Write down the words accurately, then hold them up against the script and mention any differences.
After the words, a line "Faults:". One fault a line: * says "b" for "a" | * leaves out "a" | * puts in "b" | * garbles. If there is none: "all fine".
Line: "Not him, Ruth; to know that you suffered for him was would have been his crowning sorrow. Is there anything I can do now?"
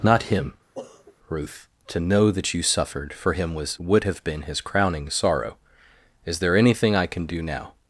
"Not him, Ruth; to know that you suffered for him was would have been his crowning sorrow. Is there anything I can do now?"
Faults:
all fine